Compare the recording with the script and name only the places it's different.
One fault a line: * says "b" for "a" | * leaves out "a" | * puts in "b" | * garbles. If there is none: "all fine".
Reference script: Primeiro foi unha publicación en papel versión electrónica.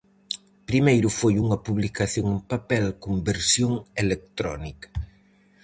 * puts in "con"